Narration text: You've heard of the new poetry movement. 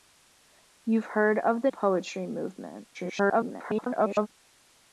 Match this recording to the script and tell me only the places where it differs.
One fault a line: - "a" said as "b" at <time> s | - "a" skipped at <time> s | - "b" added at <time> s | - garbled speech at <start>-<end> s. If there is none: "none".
- "new" skipped at 1.7 s
- garbled speech at 2.9-4.3 s